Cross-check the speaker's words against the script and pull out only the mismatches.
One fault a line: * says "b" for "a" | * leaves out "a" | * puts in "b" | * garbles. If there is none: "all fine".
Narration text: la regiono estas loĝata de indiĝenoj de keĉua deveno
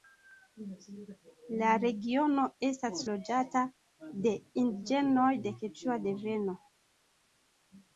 all fine